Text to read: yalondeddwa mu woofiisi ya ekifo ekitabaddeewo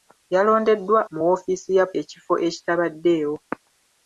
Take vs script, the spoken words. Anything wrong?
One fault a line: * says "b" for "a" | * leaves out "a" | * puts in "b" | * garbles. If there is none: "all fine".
all fine